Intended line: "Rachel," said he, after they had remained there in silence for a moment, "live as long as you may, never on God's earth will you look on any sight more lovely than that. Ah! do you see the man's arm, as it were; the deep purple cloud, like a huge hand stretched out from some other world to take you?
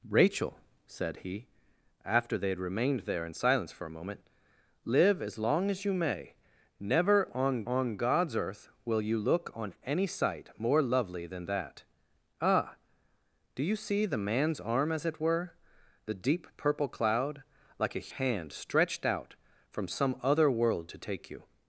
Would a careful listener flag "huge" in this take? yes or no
yes